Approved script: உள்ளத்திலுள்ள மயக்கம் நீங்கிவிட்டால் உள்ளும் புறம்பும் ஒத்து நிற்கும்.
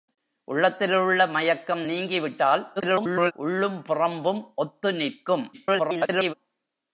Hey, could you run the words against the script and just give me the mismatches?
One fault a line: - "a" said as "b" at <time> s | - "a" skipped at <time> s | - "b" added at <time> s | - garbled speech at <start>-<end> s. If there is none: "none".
- garbled speech at 2.8-3.3 s
- garbled speech at 5.5-6.3 s